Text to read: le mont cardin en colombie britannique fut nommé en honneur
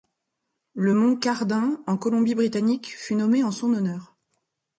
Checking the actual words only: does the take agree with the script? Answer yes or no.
no